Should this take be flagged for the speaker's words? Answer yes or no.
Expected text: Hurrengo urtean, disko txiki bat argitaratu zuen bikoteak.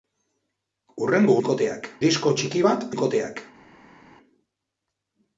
yes